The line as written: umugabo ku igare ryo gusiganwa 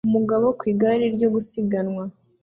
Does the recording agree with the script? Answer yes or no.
yes